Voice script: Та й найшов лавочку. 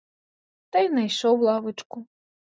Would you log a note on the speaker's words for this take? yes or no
no